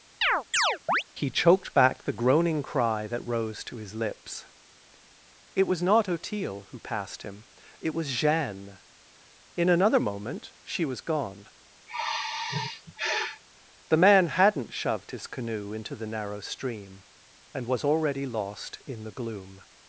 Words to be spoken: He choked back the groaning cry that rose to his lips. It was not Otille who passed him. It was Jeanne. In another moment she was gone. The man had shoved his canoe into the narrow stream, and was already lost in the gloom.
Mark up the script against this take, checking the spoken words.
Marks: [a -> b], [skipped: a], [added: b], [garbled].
He choked back the groaning cry that rose to his lips. It was not Otille who passed him. It was Jeanne. In another moment she was gone. The man [had -> hadn't] shoved his canoe into the narrow stream, and was already lost in the gloom.